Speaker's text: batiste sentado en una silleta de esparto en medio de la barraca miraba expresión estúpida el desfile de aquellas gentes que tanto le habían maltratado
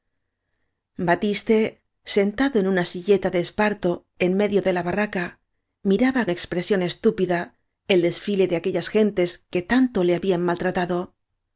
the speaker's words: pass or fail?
pass